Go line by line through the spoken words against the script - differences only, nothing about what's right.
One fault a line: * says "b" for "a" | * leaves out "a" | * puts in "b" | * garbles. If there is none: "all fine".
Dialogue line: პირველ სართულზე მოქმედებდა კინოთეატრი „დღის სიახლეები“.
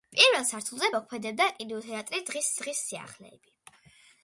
* puts in "დღის"